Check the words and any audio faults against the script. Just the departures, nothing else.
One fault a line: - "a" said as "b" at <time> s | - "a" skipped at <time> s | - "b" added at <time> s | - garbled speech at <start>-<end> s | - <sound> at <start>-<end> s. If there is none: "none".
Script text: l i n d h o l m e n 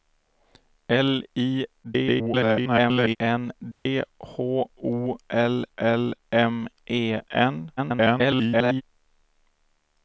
- garbled speech at 1.8-3.2 s
- dropout at 3.7-3.9 s
- "l" added at 5.8 s
- garbled speech at 7.8-8.8 s